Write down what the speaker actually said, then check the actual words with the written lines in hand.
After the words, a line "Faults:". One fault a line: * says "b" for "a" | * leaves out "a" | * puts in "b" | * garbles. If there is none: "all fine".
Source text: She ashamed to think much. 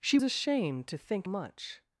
She ashamed to think much.
Faults:
all fine